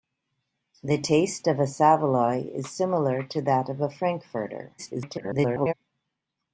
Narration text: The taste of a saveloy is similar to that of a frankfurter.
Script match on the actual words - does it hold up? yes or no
no